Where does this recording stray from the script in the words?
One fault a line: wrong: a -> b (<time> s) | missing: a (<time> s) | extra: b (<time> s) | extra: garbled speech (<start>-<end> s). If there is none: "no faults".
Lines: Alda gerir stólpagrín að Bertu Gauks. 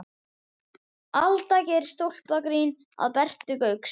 no faults